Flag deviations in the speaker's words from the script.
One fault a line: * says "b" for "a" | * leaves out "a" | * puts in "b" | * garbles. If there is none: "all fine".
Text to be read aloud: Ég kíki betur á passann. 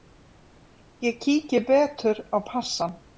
all fine